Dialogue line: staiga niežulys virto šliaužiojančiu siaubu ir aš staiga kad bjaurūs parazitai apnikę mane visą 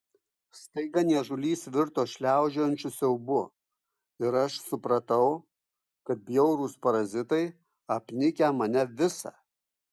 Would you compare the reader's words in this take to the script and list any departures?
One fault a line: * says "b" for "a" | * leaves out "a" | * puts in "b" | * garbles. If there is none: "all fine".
* says "supratau" for "staiga"